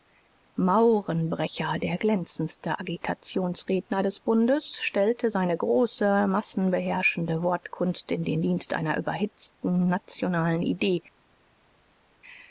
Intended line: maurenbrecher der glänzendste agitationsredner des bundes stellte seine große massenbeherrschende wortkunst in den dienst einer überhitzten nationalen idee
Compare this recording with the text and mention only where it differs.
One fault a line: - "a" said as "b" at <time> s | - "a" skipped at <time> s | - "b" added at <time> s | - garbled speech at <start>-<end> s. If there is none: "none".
none